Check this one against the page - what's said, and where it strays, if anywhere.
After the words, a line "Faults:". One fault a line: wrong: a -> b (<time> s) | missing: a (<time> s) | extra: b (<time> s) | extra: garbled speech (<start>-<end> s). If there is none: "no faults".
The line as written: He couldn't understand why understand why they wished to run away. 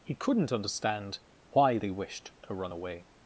He couldn't understand why they wished to run away.
Faults:
missing: understand why (1.8 s)